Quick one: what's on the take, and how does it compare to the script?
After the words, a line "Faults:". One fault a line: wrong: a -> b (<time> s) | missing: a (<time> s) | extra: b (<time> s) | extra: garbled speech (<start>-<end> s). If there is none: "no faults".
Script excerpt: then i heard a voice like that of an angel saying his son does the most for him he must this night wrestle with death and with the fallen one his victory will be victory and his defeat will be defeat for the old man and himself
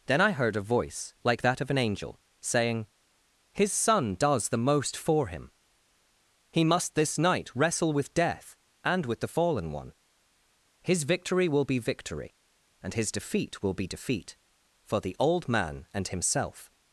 then i heard a voice like that of an angel saying his son does the most for him he must this night wrestle with death and with the fallen one his victory will be victory and his defeat will be defeat for the old man and himself
Faults:
no faults